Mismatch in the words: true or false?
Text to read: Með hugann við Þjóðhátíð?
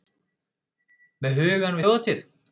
true